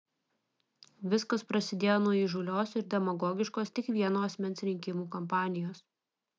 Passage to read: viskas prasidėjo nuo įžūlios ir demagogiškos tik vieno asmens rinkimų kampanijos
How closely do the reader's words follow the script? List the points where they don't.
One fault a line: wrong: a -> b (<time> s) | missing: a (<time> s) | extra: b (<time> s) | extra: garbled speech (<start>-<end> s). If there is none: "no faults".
no faults